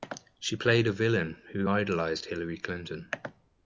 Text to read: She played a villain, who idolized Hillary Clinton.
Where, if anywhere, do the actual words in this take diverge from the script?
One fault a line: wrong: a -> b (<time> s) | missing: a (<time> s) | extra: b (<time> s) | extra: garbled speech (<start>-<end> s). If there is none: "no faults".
no faults